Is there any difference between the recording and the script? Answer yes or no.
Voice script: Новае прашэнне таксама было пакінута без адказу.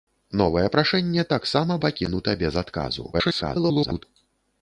yes